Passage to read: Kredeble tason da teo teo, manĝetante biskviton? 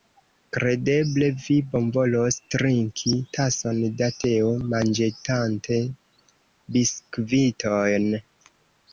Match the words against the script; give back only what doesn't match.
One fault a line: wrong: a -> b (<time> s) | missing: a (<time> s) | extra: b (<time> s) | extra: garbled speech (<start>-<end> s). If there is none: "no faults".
extra: vi bonvolos trinki (1.4 s)
missing: teo (4.5 s)